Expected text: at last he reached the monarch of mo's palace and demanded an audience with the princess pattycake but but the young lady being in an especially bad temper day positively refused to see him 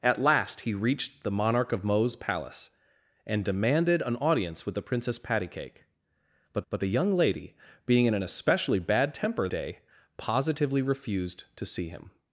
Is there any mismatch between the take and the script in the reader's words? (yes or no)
no